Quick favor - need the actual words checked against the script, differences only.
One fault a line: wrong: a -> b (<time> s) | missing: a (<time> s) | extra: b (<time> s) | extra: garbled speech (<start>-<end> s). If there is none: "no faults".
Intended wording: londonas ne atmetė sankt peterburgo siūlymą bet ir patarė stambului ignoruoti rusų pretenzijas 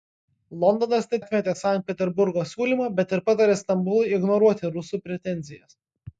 no faults